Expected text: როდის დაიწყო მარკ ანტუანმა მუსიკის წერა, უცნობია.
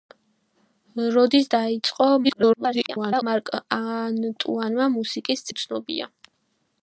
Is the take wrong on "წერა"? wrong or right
wrong